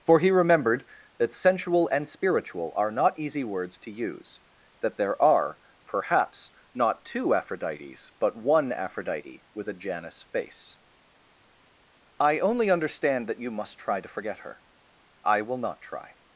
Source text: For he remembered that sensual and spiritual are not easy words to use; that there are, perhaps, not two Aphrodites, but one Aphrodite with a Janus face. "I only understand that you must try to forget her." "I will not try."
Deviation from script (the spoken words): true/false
false